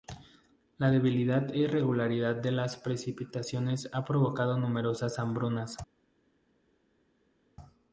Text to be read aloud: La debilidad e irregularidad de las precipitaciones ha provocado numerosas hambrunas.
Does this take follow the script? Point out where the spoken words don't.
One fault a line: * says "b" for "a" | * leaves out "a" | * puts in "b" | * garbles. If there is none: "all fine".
all fine